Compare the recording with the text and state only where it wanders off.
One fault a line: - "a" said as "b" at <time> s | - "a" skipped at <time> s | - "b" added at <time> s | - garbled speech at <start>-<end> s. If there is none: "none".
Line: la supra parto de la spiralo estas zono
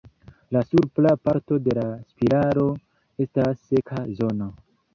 - "seka" added at 3.7 s